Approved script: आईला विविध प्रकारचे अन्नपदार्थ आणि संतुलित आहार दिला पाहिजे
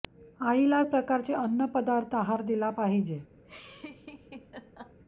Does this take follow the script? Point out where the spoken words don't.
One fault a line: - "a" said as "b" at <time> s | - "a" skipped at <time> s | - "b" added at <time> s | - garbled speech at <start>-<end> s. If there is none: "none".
- "विविध" skipped at 0.8 s
- "आणि संतुलित" skipped at 2.1 s